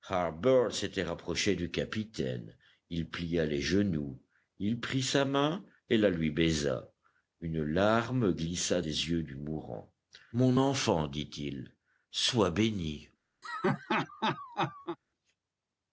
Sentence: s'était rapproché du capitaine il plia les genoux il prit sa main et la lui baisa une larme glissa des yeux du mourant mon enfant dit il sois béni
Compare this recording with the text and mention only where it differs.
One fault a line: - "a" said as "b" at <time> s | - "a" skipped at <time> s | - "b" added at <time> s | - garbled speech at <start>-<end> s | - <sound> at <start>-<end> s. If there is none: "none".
- laugh at 13.4-15.0 s